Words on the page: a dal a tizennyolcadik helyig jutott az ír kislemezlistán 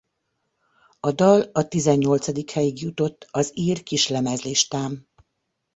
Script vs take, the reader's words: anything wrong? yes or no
no